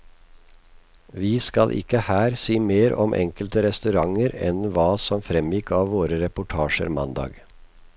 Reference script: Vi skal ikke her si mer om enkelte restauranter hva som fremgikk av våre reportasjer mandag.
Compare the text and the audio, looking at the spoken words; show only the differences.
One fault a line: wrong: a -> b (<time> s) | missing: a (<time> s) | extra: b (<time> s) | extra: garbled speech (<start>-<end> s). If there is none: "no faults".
extra: enn (4.5 s)